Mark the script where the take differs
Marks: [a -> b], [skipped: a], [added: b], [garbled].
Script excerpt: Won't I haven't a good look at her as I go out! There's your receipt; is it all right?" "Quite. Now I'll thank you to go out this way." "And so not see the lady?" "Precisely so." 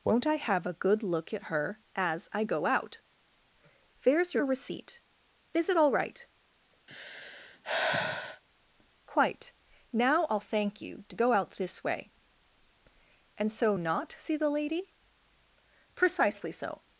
Won't I [haven't -> have] a good look at her as I go out! There's your receipt; is it all right?" "Quite. Now I'll thank you to go out this way." "And so not see the lady?" "Precisely so."